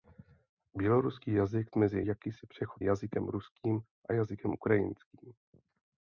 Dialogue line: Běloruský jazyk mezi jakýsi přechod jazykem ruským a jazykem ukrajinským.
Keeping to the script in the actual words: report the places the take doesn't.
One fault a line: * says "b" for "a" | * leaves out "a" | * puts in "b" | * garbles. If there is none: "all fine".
all fine